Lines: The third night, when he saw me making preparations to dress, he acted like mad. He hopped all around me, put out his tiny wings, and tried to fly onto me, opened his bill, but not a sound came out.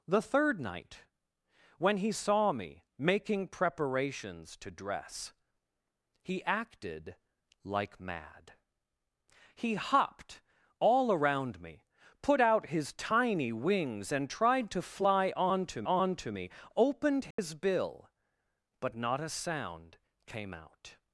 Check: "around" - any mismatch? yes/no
no